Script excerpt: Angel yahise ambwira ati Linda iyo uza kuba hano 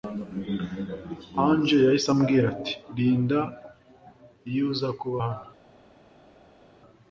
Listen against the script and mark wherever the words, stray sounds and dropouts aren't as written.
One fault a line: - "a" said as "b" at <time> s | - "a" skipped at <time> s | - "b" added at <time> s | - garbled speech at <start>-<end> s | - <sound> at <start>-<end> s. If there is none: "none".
none